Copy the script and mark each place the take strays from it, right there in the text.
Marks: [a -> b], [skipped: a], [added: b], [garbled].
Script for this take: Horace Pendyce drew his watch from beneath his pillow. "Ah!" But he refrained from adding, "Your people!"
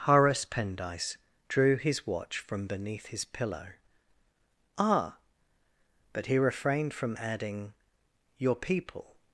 Horace Pendyce drew his watch from beneath his pillow. "Ah!" But he refrained from adding, "Your people!"